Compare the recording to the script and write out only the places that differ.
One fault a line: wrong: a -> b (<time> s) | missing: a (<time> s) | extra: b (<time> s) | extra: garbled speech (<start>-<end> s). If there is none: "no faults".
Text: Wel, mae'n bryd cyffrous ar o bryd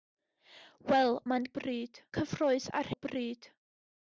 no faults